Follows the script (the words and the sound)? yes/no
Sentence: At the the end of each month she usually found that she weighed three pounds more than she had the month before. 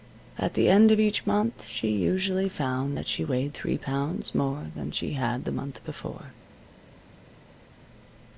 no